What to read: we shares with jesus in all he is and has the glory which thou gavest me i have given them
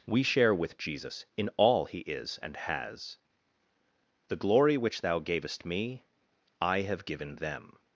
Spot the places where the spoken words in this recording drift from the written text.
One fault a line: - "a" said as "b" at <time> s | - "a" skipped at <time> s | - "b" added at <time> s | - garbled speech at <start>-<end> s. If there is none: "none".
- "shares" said as "share" at 0.2 s